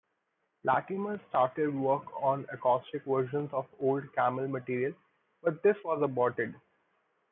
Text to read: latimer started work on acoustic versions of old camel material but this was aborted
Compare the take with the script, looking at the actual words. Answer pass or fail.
pass